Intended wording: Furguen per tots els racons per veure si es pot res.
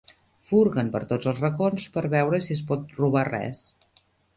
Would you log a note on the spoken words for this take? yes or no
yes